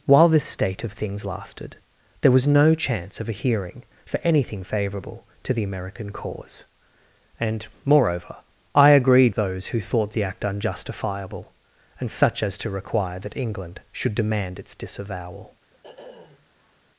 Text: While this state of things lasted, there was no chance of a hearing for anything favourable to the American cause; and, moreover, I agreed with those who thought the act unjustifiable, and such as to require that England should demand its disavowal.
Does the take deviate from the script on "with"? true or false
true